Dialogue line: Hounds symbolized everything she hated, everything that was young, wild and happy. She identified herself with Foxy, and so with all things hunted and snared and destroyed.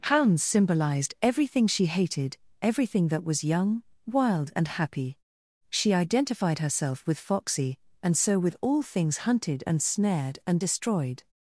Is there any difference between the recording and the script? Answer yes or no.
no